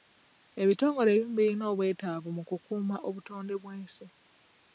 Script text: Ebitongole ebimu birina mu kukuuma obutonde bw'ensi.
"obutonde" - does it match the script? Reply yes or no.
yes